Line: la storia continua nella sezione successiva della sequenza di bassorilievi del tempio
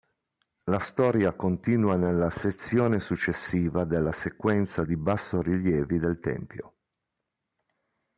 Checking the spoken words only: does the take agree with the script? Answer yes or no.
yes